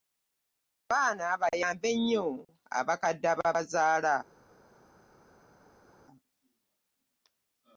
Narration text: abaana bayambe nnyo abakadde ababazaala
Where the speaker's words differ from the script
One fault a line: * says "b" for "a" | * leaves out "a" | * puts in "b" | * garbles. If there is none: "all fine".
all fine